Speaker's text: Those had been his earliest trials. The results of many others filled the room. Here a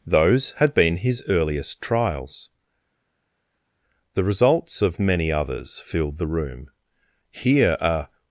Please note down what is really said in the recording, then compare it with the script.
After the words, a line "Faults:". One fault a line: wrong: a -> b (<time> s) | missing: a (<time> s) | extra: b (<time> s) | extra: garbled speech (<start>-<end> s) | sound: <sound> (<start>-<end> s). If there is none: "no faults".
Those had been his earliest trials. The results of many others filled the room. Here a
Faults:
no faults